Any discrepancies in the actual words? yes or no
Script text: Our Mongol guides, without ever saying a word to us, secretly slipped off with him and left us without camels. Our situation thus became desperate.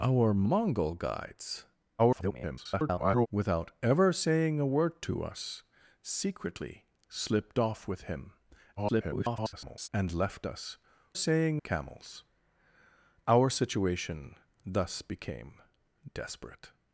yes